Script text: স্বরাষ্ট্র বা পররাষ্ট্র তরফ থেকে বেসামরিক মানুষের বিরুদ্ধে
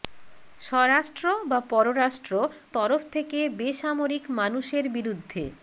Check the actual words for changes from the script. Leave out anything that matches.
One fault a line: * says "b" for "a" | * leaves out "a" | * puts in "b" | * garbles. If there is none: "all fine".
all fine